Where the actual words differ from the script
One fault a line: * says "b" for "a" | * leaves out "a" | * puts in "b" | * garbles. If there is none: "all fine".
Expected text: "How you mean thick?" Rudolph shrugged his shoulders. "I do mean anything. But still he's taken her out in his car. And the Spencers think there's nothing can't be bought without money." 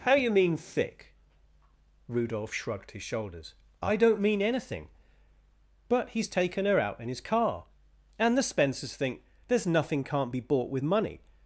* says "don't" for "do"
* leaves out "still"
* says "with" for "without"